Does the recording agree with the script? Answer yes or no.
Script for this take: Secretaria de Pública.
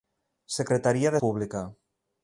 yes